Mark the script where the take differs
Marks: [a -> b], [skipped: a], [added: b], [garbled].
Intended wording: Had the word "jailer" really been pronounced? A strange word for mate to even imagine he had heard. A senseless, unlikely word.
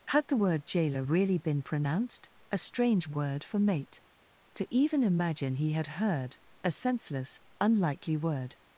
Had the word "jailer" really been pronounced? A strange word for mate to even imagine he had heard. A senseless, unlikely word.